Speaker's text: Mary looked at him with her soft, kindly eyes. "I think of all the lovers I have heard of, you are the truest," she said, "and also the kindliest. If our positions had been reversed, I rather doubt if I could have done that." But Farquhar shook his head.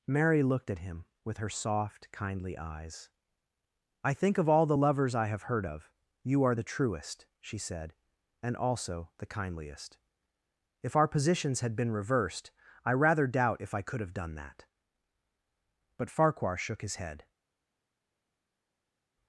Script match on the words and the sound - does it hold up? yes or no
yes